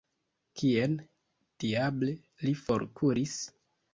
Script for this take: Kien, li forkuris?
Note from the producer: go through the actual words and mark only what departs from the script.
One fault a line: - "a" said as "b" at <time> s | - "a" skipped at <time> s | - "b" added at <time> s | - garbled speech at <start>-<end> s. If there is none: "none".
- "diable" added at 1.6 s